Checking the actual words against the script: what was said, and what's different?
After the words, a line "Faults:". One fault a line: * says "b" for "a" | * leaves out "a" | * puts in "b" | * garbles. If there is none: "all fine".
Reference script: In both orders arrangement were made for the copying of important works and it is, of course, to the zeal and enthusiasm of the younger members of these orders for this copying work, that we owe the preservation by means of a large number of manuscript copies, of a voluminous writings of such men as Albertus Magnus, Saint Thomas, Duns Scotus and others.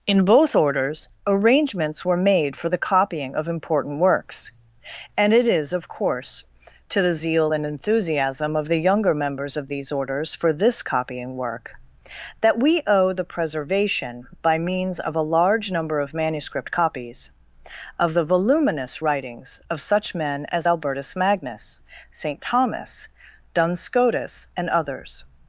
In both orders arrangements were made for the copying of important works and it is, of course, to the zeal and enthusiasm of the younger members of these orders for this copying work, that we owe the preservation by means of a large number of manuscript copies, of the voluminous writings of such men as Albertus Magnus, Saint Thomas, Duns Scotus and others.
Faults:
* says "arrangements" for "arrangement"
* says "the" for "a"